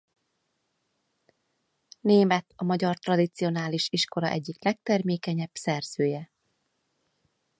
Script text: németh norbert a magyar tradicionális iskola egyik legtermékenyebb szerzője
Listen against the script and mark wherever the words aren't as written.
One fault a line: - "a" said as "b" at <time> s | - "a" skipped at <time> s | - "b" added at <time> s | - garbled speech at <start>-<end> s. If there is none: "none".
- "norbert" skipped at 2.5 s